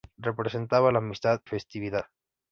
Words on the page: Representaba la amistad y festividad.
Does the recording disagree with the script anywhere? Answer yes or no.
yes